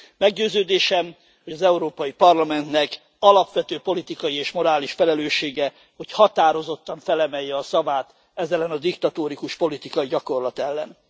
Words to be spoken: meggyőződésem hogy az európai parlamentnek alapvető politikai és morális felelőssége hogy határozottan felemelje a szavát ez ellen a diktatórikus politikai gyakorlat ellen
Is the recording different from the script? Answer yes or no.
no